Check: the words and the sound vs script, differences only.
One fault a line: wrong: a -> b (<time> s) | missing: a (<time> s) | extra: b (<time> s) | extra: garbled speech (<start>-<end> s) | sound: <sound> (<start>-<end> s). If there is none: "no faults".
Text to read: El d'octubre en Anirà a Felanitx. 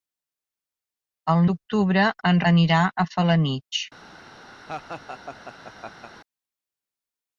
sound: laugh (4.6-6.1 s)